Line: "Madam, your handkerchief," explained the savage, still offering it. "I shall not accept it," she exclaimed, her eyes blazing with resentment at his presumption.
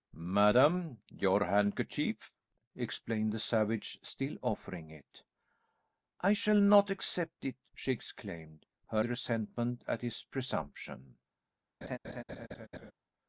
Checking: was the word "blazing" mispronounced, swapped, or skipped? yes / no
yes